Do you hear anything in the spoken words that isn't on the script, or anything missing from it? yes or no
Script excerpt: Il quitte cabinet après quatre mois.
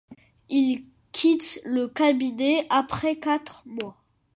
yes